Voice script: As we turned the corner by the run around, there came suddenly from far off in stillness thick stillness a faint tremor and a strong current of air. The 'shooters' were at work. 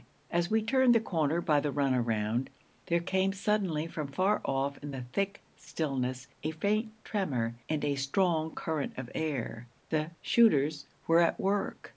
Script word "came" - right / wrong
right